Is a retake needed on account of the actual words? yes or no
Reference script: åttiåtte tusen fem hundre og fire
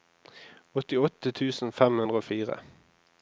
no